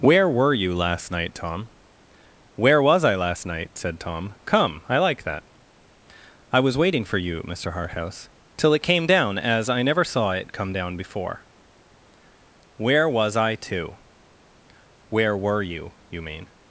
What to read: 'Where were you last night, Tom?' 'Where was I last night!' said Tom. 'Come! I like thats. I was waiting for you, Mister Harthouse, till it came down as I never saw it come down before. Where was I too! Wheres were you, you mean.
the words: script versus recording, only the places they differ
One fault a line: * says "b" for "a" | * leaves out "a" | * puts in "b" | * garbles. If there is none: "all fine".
* says "that" for "thats"
* says "Where" for "Wheres"